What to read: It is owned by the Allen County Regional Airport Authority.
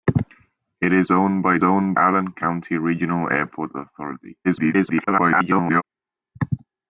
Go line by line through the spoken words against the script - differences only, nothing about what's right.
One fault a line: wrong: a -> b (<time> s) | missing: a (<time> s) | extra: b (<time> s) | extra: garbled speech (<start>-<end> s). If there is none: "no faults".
wrong: the -> owned (1.6 s)
extra: garbled speech (4.4-5.8 s)